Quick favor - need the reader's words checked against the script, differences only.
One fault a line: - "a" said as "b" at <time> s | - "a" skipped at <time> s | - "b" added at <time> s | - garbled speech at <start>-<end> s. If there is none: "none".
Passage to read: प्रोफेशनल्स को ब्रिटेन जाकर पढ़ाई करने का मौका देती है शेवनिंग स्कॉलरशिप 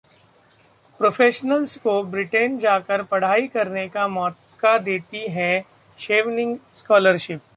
none